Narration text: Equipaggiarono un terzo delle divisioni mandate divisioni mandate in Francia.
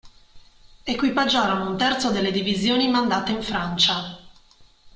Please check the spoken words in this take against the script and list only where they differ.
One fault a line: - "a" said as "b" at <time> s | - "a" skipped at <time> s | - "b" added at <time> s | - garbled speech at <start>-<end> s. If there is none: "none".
- "divisioni mandate" skipped at 3.3 s